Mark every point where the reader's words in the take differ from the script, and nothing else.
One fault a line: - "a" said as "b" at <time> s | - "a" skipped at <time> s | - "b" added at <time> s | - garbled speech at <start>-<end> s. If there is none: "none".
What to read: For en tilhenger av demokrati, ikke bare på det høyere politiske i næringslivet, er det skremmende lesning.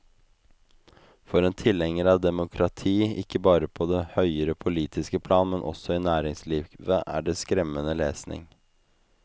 - "plan men også" added at 5.3 s